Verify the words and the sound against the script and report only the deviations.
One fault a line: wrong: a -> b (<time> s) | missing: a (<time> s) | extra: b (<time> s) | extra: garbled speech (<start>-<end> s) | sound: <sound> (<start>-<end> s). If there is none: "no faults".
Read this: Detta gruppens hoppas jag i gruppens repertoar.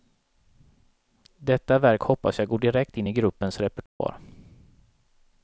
wrong: gruppens -> verk (1.8 s)
extra: går direkt in (2.5 s)
sound: dropout (3.9-4.0 s)